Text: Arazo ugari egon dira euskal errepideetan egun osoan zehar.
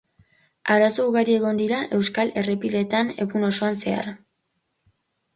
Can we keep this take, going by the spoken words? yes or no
yes